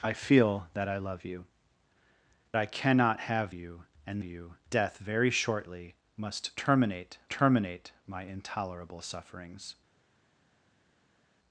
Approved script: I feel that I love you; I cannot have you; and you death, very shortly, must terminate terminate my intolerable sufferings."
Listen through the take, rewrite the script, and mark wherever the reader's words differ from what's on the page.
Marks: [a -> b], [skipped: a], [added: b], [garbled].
I feel that I love you; I cannot have you; and you death, very shortly, must terminate terminate my intolerable sufferings."